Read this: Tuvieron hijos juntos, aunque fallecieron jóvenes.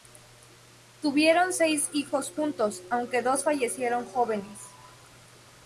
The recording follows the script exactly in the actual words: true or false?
false